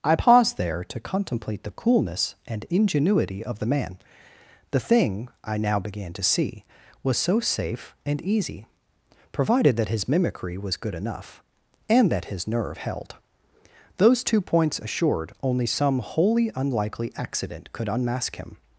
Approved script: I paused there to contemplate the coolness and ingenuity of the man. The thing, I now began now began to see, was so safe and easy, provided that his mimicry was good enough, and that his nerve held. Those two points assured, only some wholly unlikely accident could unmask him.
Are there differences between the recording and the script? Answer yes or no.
yes